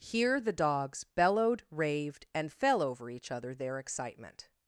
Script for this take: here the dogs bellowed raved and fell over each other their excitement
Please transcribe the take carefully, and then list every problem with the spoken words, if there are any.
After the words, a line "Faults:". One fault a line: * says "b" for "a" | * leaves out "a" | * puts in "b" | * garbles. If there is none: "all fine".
here the dogs bellowed raved and fell over each other their excitement
Faults:
all fine